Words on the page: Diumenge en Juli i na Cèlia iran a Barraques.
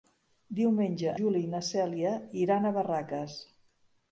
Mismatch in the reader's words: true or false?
true